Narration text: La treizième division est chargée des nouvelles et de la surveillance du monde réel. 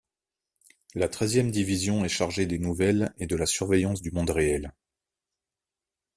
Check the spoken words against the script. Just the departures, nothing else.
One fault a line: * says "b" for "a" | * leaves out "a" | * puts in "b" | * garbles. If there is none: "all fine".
all fine